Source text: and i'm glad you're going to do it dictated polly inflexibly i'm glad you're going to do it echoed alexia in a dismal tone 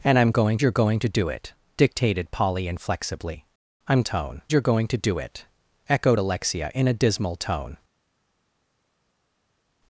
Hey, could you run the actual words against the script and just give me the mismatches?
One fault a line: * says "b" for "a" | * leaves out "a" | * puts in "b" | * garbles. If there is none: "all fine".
* says "going" for "glad"
* says "tone" for "glad"